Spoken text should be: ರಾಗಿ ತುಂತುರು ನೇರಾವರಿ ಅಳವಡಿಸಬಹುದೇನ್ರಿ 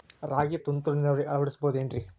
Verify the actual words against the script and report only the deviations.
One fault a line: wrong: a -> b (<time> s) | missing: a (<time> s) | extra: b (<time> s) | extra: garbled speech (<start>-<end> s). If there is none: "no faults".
no faults